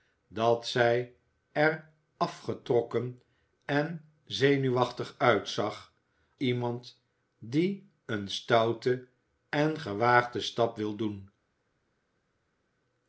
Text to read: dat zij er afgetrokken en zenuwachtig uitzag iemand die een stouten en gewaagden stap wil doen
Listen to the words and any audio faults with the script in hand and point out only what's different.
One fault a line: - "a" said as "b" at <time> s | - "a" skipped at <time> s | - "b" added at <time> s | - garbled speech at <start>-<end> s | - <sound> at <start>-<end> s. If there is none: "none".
none